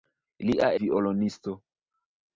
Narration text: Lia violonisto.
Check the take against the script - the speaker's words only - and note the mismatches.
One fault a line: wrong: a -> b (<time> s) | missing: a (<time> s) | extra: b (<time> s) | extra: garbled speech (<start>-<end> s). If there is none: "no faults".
no faults